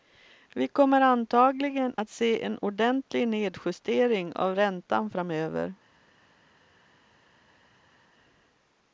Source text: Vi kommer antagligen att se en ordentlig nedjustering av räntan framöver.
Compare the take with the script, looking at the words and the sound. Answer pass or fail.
pass